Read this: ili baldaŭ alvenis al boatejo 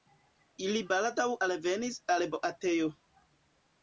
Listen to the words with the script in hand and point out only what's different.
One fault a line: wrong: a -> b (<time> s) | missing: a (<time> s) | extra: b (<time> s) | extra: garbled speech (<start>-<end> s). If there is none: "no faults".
no faults